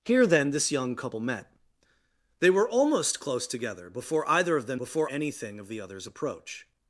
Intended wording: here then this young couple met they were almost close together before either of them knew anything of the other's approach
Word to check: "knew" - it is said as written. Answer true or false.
false